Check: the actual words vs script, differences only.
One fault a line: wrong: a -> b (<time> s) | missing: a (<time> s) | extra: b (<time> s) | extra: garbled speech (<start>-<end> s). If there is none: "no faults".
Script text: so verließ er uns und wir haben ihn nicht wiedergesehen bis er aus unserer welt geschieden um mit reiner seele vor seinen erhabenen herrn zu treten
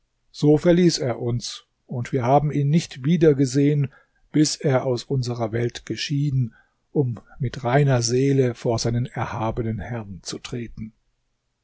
no faults